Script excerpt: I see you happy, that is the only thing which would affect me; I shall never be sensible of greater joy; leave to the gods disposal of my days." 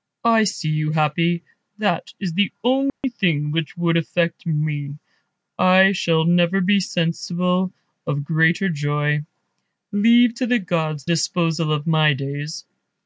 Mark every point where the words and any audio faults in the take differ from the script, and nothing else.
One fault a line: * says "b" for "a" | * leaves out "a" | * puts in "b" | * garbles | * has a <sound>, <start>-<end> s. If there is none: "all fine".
* has a dropout, 2.9-3.0 s